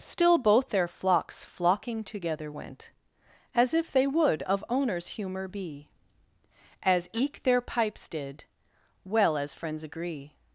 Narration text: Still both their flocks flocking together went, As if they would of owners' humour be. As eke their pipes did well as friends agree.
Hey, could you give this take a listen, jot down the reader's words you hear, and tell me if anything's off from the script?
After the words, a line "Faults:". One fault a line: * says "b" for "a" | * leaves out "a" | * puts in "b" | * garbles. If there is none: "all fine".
Still both their flocks flocking together went, As if they would of owners' humour be. As eke their pipes did well as friends agree.
Faults:
all fine